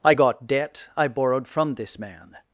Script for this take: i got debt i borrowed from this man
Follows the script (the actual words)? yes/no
yes